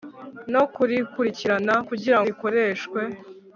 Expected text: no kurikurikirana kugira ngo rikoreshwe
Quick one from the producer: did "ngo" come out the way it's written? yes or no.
no